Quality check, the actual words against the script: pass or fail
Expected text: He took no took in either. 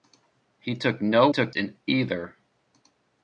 pass